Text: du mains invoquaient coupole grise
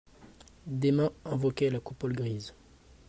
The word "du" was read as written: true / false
false